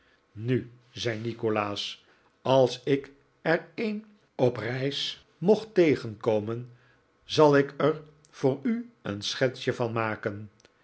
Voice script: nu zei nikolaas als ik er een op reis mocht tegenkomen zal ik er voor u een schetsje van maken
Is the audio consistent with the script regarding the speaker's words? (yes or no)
yes